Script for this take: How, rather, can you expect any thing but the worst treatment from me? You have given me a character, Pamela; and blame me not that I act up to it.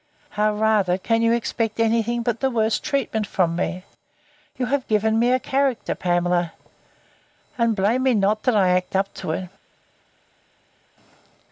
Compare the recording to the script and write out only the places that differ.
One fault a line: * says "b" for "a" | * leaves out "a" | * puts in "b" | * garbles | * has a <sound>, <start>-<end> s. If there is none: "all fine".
all fine